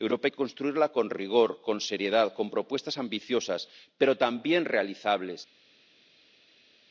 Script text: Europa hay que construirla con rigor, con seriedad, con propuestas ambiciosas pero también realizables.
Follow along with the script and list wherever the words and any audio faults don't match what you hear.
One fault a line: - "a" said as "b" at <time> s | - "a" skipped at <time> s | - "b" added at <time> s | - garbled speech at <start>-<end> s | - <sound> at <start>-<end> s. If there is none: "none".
none